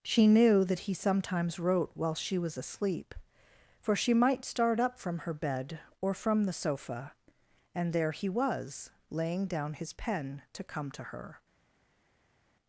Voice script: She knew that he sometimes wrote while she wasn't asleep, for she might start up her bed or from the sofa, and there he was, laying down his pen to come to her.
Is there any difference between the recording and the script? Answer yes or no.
yes